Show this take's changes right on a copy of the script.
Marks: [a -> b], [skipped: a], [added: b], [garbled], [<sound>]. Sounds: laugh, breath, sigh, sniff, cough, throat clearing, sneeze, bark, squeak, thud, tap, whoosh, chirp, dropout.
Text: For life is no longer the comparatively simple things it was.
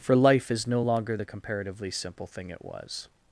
For life is no longer the comparatively simple [things -> thing] it was.